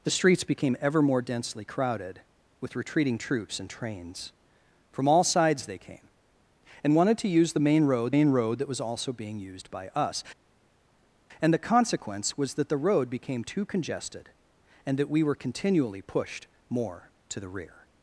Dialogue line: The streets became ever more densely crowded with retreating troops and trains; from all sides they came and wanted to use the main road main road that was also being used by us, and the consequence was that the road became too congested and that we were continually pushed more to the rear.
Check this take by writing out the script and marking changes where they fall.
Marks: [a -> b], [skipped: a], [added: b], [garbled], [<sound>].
The streets became ever more densely crowded with retreating troops and trains; from all sides they came and wanted to use the main road main road that was also being used by us, and the consequence was that the road became too congested and that we were continually pushed more to the rear.